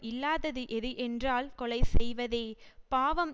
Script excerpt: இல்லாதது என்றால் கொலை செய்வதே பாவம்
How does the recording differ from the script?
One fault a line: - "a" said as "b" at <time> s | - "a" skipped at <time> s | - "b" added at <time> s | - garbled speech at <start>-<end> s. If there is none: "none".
- "எது" added at 0.7 s